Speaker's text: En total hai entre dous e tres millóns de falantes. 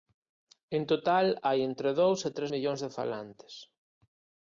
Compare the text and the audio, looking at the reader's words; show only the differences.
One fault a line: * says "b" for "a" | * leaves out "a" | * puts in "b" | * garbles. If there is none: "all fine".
all fine